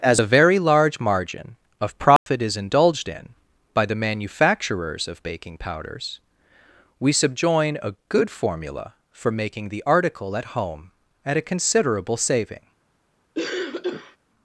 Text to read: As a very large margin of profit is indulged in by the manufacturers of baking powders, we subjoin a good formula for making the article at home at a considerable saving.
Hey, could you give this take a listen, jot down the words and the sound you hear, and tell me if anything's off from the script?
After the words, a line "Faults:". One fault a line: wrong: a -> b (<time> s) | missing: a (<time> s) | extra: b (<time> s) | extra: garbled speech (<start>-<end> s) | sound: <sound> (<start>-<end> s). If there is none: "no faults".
As a very large margin of profit is indulged in by the manufacturers of baking powders, we subjoin a good formula for making the article at home at a considerable saving.
Faults:
sound: dropout (2.2-2.3 s)
sound: cough (13.3-14.2 s)